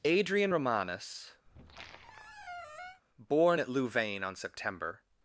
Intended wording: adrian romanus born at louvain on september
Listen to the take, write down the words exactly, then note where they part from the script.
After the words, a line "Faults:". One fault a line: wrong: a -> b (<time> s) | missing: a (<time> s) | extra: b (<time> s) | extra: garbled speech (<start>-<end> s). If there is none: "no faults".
adrian romanus born at louvain on september
Faults:
no faults